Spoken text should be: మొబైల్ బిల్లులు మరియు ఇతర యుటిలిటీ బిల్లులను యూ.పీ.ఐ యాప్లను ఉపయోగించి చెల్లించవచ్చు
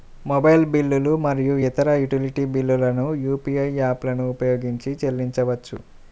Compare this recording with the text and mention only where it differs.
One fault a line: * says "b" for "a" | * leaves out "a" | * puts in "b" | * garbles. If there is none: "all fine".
all fine